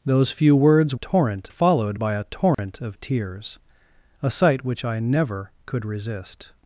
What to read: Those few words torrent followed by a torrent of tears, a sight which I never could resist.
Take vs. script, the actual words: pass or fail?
pass